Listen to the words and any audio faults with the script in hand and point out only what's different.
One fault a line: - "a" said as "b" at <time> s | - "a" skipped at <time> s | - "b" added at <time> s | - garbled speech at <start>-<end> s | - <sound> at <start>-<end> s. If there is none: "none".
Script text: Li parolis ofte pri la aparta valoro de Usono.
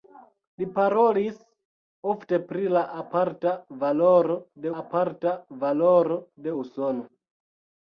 - "aparta valoro de" added at 4.8 s